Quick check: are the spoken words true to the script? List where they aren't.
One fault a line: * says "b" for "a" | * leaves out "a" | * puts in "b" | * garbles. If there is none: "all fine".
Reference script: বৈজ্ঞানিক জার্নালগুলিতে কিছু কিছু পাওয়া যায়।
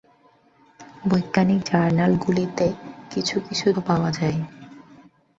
all fine